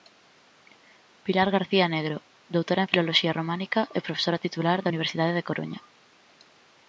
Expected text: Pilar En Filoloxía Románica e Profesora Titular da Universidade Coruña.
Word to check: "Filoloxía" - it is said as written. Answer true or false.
true